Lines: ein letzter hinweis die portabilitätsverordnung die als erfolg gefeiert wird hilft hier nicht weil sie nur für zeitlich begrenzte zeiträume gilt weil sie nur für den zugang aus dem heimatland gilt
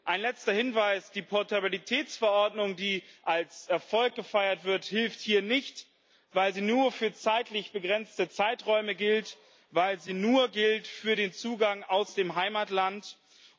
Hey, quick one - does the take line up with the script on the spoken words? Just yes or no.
yes